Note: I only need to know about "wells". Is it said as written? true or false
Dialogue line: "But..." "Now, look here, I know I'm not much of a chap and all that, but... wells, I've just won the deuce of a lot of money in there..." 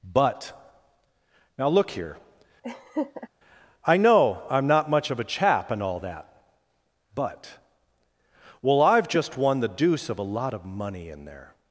false